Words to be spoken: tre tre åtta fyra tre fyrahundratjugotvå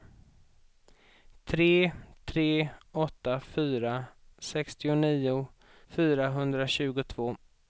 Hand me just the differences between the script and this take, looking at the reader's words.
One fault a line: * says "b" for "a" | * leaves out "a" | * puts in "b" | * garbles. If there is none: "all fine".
* says "sextionio" for "tre"